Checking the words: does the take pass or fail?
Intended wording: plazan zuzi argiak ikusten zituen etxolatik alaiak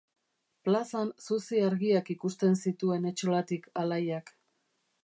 pass